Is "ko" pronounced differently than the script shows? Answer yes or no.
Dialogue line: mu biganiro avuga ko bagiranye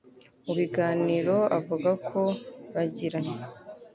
no